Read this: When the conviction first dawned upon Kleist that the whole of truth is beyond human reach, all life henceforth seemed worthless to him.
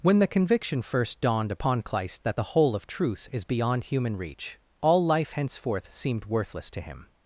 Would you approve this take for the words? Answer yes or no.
yes